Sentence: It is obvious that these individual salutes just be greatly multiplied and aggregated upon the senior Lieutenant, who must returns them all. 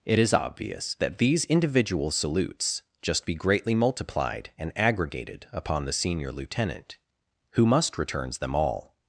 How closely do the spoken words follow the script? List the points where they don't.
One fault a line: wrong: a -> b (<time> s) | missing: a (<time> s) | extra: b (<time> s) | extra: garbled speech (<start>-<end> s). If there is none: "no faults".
no faults